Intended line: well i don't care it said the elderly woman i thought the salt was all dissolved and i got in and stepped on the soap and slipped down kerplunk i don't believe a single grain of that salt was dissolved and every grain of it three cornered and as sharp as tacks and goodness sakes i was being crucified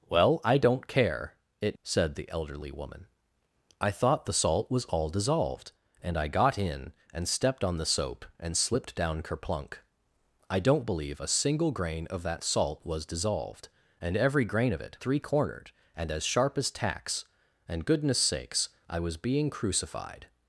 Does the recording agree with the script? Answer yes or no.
yes